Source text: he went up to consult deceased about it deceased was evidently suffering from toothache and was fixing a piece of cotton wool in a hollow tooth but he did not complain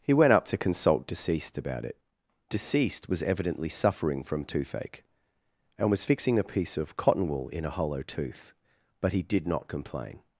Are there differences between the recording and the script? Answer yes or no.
no